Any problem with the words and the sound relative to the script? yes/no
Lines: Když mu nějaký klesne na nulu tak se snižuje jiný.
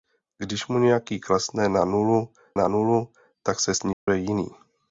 yes